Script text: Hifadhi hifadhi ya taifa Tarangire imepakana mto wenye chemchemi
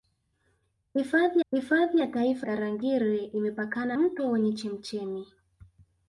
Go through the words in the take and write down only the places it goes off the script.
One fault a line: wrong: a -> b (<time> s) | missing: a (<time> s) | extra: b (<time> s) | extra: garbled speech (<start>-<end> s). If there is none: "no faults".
no faults